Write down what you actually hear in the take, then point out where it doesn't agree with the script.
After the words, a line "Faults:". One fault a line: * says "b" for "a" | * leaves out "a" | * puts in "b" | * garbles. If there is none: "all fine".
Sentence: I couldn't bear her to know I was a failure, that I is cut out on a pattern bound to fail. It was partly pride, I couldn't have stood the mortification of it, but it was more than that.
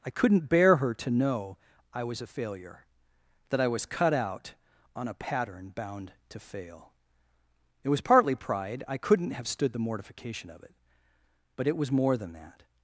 I couldn't bear her to know I was a failure, that I was cut out on a pattern bound to fail. It was partly pride, I couldn't have stood the mortification of it, but it was more than that.
Faults:
* says "was" for "is"